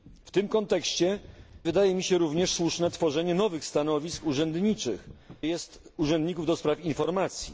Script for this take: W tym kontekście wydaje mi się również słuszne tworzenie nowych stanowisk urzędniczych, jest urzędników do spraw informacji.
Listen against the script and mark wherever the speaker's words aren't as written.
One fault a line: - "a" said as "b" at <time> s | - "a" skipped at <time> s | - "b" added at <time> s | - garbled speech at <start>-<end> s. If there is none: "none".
none